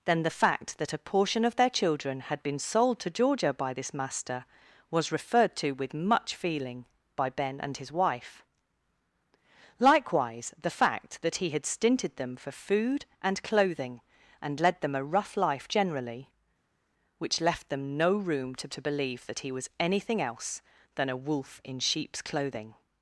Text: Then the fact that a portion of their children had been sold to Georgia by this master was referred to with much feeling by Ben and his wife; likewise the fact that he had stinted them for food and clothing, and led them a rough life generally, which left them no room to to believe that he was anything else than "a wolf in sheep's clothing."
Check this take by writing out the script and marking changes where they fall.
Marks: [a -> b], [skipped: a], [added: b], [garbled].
Then the fact that a portion of their children had been sold to Georgia by this master was referred to with much feeling by Ben and his wife; likewise the fact that he had stinted them for food and clothing, and led them a rough life generally, which left them no room to to believe that he was anything else than "a wolf in sheep's clothing."